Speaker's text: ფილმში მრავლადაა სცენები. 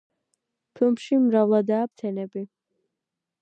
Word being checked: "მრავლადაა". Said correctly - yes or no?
yes